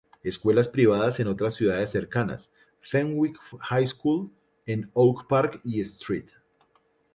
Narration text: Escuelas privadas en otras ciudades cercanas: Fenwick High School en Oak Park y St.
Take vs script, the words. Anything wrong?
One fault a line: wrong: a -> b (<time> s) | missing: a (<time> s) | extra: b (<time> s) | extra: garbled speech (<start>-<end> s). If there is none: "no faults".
no faults